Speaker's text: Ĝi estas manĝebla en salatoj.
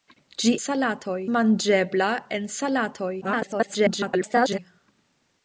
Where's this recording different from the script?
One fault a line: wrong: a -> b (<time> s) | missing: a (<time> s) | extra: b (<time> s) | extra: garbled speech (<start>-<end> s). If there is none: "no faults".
wrong: estas -> salatoj (0.6 s)
extra: garbled speech (3.2-4.6 s)